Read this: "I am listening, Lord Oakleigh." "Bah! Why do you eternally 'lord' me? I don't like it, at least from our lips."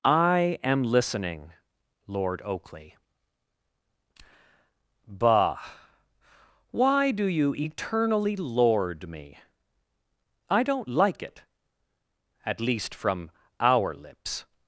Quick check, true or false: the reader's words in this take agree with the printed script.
true